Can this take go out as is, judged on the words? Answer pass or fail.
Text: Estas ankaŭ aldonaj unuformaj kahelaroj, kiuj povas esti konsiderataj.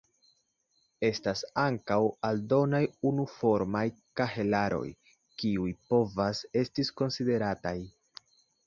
pass